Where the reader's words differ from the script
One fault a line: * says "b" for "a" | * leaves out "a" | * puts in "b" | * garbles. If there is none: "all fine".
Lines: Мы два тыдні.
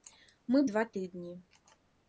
all fine